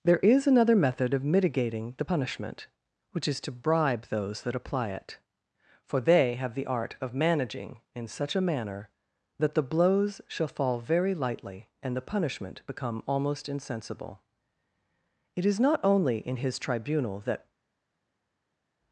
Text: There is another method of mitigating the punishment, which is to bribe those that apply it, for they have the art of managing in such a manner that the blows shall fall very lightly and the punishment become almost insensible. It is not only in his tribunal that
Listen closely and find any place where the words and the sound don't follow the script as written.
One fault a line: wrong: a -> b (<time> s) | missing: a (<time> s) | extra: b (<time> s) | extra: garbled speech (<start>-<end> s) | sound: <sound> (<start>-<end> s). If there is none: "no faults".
no faults